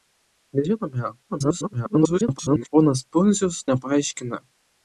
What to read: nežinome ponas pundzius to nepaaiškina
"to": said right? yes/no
no